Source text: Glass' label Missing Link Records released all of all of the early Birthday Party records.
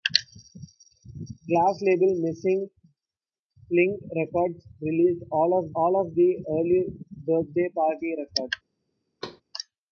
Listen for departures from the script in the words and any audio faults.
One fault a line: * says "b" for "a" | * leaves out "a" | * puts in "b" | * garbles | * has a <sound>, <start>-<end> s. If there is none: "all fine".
* has a thud, 9.2-9.4 s